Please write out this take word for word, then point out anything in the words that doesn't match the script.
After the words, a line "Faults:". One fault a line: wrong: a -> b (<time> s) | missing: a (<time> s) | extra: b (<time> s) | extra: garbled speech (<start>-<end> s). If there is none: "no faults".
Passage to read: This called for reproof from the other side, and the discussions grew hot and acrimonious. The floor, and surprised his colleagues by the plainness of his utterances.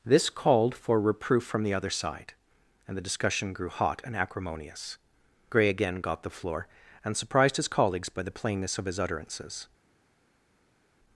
This called for reproof from the other side, and the discussion grew hot and acrimonious. Gray again got the floor, and surprised his colleagues by the plainness of his utterances.
Faults:
wrong: discussions -> discussion (3.1 s)
extra: Gray again got (5.5 s)